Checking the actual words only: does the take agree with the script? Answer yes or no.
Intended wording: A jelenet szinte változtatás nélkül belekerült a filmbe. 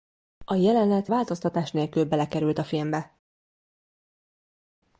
no